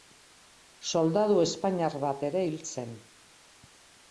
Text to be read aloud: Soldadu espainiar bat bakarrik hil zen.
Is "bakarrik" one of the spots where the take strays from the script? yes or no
yes